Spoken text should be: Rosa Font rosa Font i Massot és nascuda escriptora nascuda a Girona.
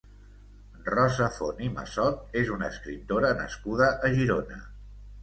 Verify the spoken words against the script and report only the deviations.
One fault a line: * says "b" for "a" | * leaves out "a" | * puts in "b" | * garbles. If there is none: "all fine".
* leaves out "rosa Font"
* says "una" for "nascuda"